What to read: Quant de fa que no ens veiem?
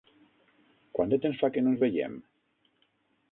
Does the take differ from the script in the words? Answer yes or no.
yes